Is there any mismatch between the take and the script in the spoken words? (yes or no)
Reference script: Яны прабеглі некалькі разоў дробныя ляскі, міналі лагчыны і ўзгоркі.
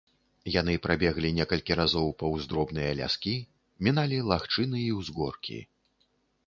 yes